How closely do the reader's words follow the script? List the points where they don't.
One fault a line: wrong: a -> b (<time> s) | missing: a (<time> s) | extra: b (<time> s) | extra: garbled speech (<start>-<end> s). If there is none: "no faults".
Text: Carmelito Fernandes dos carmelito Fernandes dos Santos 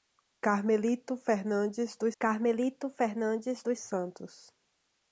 no faults